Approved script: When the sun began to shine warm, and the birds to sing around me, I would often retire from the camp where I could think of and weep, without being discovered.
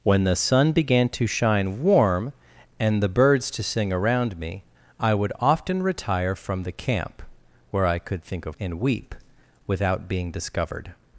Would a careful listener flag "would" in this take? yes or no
no